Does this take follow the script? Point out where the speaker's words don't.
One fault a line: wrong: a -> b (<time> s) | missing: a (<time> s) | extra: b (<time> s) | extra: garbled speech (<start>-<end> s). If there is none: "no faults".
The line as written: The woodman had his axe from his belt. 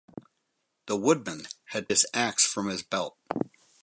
no faults